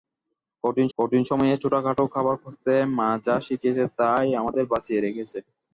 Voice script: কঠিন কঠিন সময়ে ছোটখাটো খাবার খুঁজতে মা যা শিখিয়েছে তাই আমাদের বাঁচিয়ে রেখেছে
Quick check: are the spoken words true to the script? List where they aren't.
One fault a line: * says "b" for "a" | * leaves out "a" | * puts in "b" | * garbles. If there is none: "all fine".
all fine